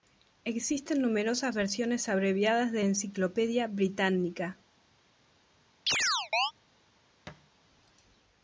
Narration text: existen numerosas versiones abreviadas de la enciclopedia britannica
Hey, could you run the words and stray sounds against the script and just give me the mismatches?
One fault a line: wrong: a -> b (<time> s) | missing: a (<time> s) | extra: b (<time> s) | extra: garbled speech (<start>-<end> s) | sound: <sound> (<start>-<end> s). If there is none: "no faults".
missing: la (2.9 s)
sound: chirp (5.9-6.5 s)
sound: thud (7.3-7.5 s)